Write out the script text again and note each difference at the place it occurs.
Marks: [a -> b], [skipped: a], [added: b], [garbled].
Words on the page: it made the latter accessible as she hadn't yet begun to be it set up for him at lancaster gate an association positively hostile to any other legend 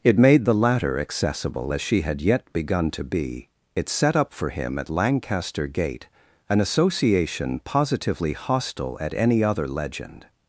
it made the latter accessible as she [hadn't -> had] yet begun to be it set up for him at lancaster gate an association positively hostile [to -> at] any other legend